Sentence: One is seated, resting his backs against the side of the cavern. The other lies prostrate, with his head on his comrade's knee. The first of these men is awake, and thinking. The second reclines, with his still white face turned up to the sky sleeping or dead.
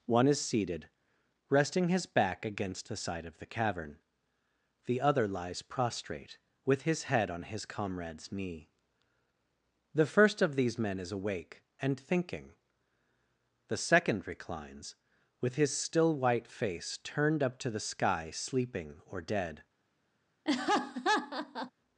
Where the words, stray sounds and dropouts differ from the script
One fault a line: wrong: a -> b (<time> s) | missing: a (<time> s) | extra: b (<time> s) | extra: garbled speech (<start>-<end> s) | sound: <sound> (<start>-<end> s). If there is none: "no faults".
wrong: backs -> back (2.0 s)
sound: laugh (20.5-21.7 s)